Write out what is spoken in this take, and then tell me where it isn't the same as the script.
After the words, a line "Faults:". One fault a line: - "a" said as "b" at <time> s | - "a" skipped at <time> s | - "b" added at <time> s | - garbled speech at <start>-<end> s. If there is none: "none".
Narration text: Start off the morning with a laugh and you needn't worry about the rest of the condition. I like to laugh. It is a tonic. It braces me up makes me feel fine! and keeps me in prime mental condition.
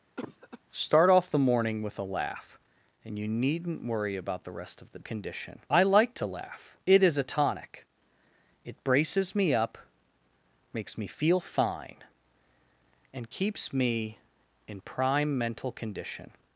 Start off the morning with a laugh and you needn't worry about the rest of the condition. I like to laugh. It is a tonic. It braces me up makes me feel fine! and keeps me in prime mental condition.
Faults:
none